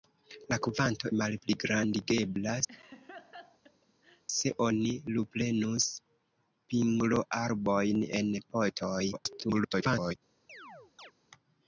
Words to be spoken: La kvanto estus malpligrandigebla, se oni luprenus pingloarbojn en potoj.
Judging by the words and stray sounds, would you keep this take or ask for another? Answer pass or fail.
fail